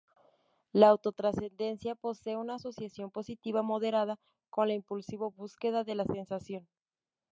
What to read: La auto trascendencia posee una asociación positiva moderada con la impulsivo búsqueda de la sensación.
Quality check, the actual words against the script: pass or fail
pass